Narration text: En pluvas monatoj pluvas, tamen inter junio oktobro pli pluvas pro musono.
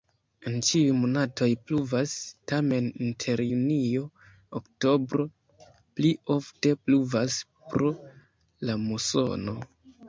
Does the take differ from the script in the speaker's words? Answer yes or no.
yes